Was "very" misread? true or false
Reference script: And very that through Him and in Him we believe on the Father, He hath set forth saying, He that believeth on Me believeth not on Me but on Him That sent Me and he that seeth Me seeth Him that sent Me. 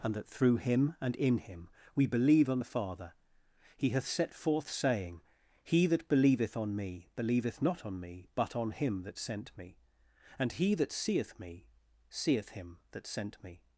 true